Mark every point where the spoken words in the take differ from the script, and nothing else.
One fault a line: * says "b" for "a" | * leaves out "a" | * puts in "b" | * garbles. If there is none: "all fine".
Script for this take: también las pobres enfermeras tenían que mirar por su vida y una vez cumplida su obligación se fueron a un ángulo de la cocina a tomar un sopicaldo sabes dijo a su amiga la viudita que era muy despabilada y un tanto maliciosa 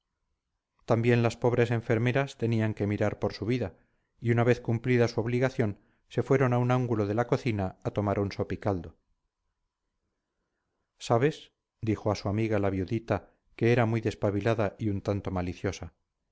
all fine